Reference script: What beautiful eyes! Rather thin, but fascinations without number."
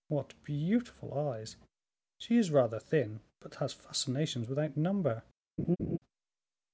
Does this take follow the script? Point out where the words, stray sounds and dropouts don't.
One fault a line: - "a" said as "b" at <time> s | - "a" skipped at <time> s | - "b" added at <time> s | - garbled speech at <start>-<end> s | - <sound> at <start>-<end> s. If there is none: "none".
- "She is" added at 2.2 s
- "has" added at 3.6 s
- laugh at 5.6-6.0 s